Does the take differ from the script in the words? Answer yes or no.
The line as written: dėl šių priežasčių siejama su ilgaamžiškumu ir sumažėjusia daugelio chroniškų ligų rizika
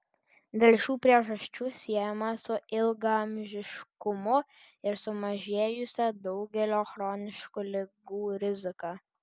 no